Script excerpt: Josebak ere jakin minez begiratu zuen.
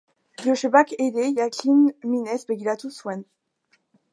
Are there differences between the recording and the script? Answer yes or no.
no